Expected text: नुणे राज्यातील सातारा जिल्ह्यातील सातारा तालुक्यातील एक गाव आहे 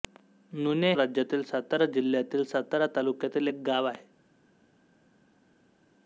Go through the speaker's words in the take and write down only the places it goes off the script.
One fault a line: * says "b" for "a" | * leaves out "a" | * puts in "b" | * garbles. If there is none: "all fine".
all fine